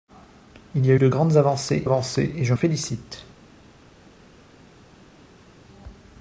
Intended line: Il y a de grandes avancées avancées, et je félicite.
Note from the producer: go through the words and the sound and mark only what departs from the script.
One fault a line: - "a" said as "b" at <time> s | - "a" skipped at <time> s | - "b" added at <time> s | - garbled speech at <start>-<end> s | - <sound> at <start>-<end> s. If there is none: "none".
none